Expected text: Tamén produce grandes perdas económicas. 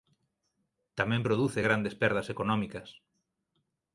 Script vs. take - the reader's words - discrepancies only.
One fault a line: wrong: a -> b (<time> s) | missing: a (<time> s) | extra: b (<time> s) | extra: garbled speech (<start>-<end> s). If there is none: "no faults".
no faults